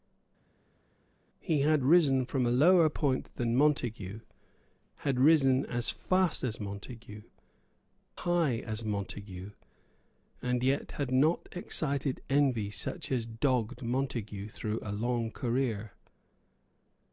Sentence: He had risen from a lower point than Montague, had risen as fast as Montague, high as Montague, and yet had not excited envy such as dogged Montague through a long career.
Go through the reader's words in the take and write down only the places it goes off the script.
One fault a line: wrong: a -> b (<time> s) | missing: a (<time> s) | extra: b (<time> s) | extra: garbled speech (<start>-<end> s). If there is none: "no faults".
no faults